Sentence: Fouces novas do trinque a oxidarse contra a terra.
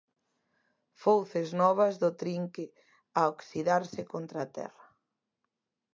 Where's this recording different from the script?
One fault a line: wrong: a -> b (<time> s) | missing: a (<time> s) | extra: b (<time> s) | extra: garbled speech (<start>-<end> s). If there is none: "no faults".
no faults